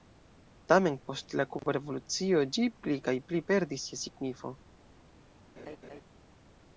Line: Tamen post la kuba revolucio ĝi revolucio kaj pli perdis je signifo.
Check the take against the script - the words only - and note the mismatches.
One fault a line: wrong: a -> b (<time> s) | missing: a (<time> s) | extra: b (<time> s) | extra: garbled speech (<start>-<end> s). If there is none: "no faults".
wrong: revolucio -> pli (2.8 s)